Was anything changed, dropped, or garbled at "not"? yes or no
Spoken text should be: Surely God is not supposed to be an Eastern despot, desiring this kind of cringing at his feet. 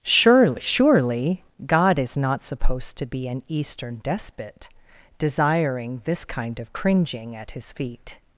no